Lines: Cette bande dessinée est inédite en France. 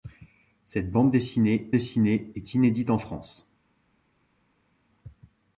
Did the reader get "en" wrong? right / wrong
right